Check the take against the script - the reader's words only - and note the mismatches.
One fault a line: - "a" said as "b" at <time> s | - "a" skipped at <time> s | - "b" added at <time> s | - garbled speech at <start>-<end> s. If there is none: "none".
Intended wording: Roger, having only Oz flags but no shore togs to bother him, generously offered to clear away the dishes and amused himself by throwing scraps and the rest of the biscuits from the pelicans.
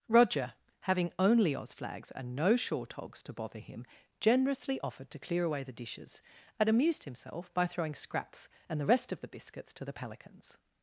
- "but" said as "and" at 2.1 s
- "from" said as "to" at 9.7 s